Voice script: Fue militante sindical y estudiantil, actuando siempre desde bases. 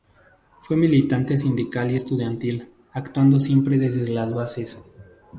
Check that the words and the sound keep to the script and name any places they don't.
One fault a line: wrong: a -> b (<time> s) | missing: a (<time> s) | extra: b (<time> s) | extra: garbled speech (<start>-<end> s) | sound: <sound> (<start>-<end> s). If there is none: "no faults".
extra: las (4.1 s)